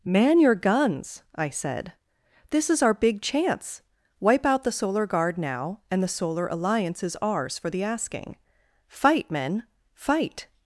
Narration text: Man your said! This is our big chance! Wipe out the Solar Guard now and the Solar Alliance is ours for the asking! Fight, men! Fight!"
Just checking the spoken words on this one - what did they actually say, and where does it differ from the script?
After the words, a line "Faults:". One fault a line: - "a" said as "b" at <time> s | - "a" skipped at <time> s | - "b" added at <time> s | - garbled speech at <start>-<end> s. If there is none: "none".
Man your guns, I said! This is our big chance! Wipe out the Solar Guard now and the Solar Alliance is ours for the asking! Fight, men! Fight!"
Faults:
- "guns I" added at 0.6 s